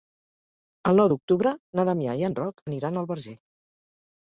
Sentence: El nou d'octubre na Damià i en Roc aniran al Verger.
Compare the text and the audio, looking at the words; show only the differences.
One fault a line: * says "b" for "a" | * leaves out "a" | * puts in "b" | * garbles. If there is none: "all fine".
all fine